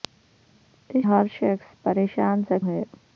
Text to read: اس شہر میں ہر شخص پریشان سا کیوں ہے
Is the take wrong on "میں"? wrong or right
wrong